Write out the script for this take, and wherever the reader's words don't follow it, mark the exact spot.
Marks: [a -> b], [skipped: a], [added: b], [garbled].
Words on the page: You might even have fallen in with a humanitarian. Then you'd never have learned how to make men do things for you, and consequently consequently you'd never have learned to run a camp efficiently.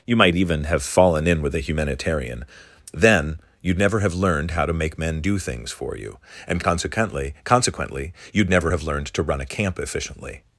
You might even have fallen in with a humanitarian. Then you'd never have learned how to make men do things for you, and consequently consequently you'd never have learned to run a camp efficiently.